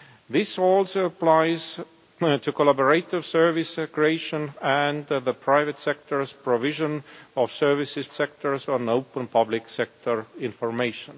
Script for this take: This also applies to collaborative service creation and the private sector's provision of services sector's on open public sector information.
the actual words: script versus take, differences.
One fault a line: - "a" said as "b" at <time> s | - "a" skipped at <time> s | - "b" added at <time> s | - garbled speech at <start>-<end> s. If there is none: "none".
none